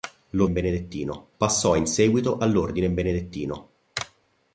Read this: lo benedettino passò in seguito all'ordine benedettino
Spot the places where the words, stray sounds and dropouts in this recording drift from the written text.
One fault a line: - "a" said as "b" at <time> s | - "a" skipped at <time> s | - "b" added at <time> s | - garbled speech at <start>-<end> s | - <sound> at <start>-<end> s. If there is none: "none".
none